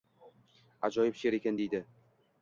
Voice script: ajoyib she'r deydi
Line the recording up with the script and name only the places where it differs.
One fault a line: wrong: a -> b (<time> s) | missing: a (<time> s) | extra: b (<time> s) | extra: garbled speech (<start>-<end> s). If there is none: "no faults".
extra: ekan (1.4 s)